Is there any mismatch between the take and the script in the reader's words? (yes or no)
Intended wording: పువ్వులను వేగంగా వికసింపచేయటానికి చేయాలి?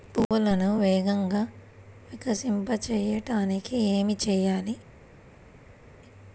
yes